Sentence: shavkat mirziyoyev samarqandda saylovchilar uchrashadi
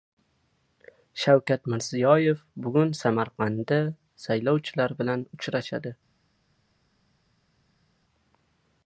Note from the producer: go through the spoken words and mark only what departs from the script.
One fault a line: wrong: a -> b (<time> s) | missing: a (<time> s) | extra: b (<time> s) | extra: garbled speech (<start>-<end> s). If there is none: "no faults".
extra: bugun (2.7 s)
extra: bilan (5.0 s)